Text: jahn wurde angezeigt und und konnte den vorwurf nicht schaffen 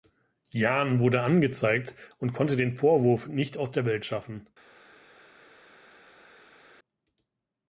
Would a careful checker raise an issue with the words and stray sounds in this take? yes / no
yes